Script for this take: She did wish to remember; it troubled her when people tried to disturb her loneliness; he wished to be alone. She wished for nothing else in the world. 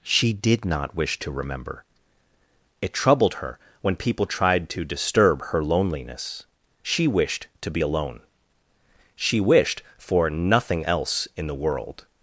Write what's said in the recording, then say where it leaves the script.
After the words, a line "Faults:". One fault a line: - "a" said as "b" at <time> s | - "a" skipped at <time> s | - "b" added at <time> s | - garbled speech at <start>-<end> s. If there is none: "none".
She did not wish to remember; it troubled her when people tried to disturb her loneliness; she wished to be alone. She wished for nothing else in the world.
Faults:
- "not" added at 0.7 s
- "he" said as "she" at 6.8 s